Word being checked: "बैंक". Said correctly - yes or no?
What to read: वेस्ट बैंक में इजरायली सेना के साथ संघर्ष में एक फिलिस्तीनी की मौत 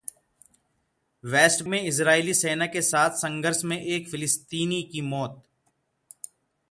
no